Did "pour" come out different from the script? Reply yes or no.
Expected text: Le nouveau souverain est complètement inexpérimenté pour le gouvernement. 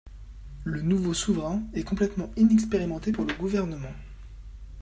no